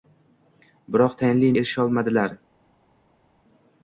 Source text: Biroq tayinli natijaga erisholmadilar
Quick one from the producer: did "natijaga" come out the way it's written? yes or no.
no